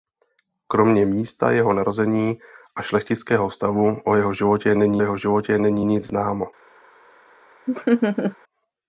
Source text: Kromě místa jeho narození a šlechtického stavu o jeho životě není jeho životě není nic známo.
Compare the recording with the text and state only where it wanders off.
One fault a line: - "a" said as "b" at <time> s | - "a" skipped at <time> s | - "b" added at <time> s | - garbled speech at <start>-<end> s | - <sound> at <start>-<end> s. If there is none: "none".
- laugh at 7.7-8.4 s